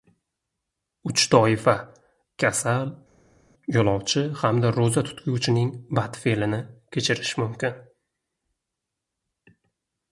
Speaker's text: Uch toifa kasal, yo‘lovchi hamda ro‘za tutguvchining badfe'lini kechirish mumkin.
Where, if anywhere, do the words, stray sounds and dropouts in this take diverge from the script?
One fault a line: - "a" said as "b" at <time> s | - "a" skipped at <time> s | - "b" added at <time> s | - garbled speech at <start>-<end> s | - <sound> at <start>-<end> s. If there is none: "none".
none